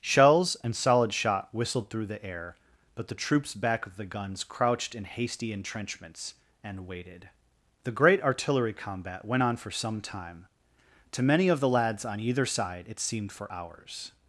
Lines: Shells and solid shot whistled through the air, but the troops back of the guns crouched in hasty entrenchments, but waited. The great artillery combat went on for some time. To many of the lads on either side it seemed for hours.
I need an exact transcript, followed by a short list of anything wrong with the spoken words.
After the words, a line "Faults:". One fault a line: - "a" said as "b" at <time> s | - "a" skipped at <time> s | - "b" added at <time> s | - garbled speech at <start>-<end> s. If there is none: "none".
Shells and solid shot whistled through the air, but the troops back of the guns crouched in hasty entrenchments, and waited. The great artillery combat went on for some time. To many of the lads on either side it seemed for hours.
Faults:
- "but" said as "and" at 6.6 s